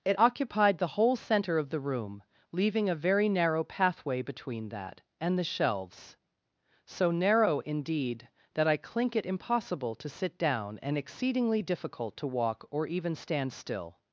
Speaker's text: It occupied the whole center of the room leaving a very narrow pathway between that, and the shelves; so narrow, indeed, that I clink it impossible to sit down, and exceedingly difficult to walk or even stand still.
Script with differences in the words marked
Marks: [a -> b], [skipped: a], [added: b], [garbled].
It occupied the whole center of the room leaving a very narrow pathway between that, and the shelves; so narrow, indeed, that I clink it impossible to sit down, and exceedingly difficult to walk or even stand still.